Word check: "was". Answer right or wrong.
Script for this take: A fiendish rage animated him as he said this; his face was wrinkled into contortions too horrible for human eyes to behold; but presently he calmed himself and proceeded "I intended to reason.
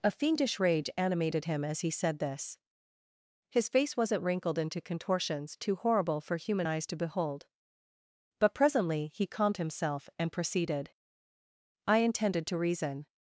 wrong